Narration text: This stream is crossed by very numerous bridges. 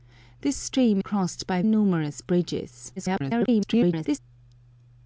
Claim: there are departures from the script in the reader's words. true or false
true